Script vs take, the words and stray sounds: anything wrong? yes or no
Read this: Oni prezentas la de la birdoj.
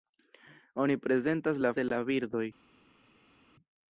no